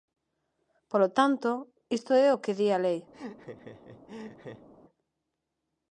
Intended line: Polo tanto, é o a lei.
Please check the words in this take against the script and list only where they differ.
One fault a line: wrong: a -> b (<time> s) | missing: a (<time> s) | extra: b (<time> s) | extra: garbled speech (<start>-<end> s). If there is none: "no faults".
extra: isto (2.0 s)
extra: que di (2.4 s)